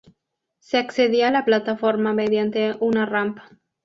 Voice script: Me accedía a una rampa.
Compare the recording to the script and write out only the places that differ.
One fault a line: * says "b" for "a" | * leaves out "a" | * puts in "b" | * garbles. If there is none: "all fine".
* says "Se" for "Me"
* puts in "la plataforma mediante"